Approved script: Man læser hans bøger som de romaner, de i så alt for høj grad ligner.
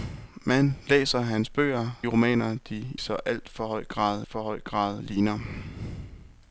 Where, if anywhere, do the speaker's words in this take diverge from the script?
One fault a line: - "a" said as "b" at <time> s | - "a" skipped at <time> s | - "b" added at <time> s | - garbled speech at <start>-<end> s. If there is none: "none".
- "som" said as "romaner" at 2.1 s
- "romaner de i så alt" said as "så alt for høj grad" at 3.0 s